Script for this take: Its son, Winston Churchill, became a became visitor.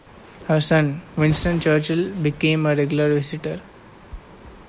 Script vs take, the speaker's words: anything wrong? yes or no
yes